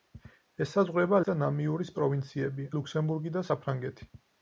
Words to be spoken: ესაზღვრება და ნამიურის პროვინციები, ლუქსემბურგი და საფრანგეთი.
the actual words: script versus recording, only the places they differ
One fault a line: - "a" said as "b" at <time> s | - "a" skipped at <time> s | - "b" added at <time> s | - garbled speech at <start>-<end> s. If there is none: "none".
none